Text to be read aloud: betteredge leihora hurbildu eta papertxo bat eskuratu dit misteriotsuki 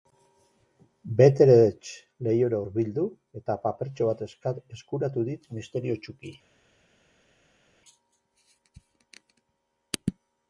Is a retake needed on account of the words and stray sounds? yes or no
no